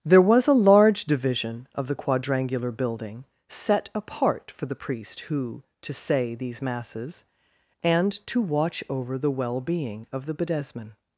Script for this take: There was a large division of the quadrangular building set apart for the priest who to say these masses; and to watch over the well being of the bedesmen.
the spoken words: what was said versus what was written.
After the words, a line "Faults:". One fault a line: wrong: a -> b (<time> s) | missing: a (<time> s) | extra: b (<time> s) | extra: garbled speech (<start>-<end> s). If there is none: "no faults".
There was a large division of the quadrangular building set apart for the priest who to say these masses; and to watch over the well being of the bedesmen.
Faults:
no faults